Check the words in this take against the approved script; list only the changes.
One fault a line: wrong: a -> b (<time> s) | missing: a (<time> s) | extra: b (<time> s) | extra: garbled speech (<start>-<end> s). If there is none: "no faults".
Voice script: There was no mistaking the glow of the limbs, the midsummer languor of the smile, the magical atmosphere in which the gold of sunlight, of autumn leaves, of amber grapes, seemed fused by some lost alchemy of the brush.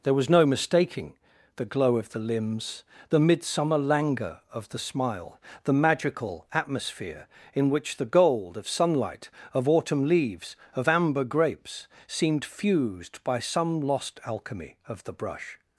no faults